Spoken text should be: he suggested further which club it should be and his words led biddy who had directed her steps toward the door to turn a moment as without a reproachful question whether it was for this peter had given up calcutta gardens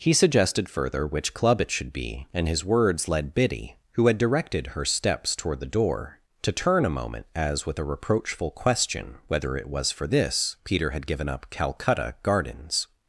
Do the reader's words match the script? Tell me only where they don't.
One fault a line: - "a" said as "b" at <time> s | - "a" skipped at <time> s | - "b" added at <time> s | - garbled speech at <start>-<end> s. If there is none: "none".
- "without" said as "with" at 7.7 s